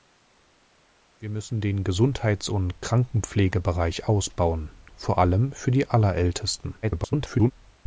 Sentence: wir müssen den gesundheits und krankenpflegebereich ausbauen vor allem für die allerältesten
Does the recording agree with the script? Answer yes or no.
no